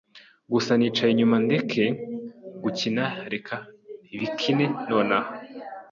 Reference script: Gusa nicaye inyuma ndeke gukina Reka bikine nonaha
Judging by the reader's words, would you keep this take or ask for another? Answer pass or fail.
pass